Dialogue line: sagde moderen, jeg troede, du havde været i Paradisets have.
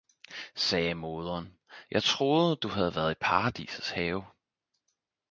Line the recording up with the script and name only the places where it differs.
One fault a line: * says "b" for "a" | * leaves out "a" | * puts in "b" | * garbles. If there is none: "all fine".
all fine